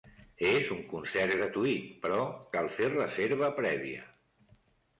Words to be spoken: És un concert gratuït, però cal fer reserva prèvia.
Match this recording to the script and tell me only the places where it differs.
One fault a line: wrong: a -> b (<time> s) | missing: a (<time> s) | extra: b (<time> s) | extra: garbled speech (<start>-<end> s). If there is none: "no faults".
no faults